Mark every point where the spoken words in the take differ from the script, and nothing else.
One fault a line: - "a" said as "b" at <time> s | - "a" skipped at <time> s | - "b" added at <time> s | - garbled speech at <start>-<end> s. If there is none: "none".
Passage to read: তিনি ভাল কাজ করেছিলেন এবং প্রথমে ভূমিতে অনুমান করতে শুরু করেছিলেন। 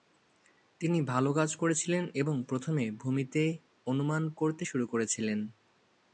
none